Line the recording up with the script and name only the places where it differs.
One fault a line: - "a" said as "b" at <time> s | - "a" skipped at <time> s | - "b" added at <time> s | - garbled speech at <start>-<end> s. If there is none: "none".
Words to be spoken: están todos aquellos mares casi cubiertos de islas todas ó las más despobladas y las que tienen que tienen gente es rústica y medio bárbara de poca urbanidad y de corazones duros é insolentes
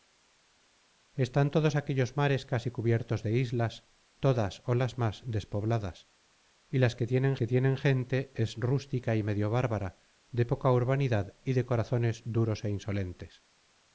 none